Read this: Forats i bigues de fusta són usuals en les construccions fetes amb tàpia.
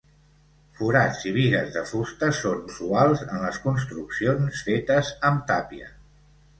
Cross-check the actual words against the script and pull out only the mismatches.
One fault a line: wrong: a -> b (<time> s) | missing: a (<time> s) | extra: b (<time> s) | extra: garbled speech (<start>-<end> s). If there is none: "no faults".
no faults